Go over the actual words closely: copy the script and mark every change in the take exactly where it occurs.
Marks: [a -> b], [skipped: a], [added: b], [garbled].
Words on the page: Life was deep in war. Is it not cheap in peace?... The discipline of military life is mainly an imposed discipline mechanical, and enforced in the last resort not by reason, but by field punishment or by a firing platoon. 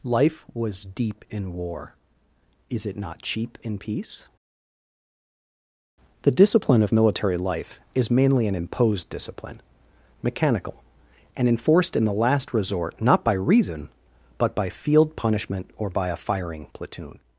Life was deep in war. Is it not cheap in peace?... The discipline of military life is mainly an imposed discipline mechanical, and enforced in the last resort not by reason, but by field punishment or by a firing platoon.